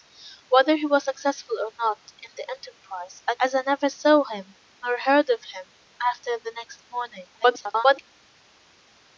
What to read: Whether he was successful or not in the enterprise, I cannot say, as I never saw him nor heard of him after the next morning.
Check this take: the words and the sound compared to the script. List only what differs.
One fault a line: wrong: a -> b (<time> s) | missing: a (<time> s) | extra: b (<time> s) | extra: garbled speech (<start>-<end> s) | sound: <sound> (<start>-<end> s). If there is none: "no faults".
missing: cannot say (3.3 s)
extra: garbled speech (7.4-8.0 s)